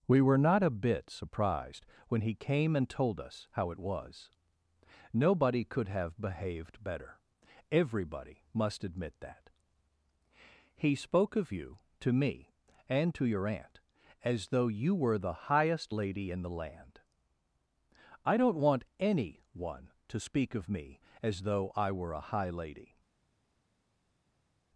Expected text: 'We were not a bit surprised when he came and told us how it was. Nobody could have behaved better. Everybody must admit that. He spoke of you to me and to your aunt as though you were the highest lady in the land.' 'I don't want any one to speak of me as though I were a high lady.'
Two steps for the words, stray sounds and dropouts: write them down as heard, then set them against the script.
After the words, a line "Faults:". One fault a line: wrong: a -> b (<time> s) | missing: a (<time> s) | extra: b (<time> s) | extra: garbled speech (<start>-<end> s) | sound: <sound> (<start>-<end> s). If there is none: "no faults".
'We were not a bit surprised when he came and told us how it was. Nobody could have behaved better. Everybody must admit that. He spoke of you to me and to your aunt as though you were the highest lady in the land.' 'I don't want any one to speak of me as though I were a high lady.'
Faults:
no faults